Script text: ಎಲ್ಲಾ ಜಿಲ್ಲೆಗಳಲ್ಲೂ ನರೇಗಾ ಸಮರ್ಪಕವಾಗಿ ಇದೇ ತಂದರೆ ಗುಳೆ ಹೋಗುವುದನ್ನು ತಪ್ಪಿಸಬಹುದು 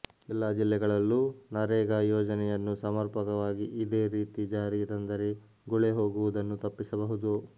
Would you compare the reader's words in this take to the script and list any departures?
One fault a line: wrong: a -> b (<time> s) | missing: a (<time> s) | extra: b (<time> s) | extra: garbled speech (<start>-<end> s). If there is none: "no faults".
extra: ಯೋಜನೆಯನ್ನು (2.0 s)
extra: ರೀತಿ ಜಾರಿಗೆ (4.2 s)